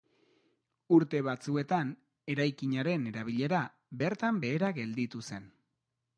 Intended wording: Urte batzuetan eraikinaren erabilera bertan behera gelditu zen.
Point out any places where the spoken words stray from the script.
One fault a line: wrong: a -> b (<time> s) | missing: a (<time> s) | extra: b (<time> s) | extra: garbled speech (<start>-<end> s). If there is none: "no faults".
no faults